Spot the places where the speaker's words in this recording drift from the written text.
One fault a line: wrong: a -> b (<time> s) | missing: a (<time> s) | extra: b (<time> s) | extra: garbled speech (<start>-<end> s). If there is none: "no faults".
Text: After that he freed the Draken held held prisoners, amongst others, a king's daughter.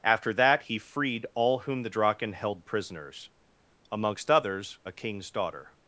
extra: all whom (1.4 s)
missing: held (2.6 s)